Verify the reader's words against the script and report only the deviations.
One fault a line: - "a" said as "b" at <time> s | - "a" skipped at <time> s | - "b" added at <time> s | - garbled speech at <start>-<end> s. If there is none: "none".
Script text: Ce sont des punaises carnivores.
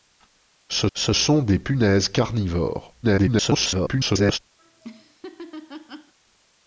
- "ce" added at 1.0 s
- garbled speech at 3.0-4.4 s